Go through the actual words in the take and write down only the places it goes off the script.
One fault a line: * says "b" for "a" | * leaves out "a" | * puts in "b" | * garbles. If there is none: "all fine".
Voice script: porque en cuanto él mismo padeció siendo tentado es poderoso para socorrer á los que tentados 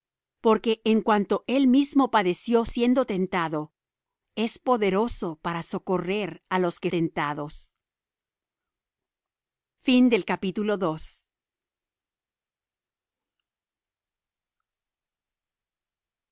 all fine